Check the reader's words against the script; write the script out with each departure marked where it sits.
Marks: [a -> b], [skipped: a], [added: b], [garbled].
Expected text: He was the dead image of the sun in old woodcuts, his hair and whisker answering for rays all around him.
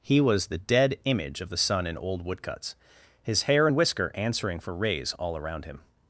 He was the dead image of the sun in old woodcuts, his hair and whisker answering for rays all around him.